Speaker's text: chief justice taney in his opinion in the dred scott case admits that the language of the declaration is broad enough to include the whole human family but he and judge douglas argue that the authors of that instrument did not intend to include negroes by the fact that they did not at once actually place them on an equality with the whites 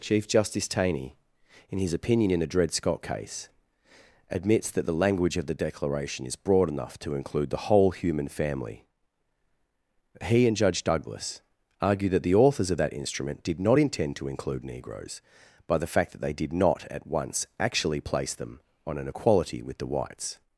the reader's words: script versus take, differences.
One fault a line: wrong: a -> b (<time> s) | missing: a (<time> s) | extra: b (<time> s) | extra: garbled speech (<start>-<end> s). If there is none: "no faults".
missing: but (8.8 s)